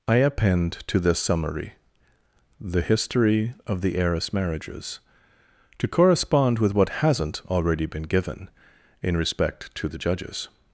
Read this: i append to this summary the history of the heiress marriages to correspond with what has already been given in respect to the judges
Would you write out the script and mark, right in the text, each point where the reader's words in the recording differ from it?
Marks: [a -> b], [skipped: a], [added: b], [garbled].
i append to this summary the history of the heiress marriages to correspond with what [has -> hasn't] already been given in respect to the judges